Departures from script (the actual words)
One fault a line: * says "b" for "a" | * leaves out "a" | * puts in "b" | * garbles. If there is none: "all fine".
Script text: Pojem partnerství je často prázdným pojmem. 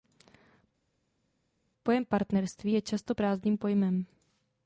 all fine